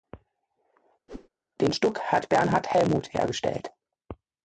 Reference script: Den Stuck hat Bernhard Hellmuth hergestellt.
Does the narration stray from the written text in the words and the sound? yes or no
yes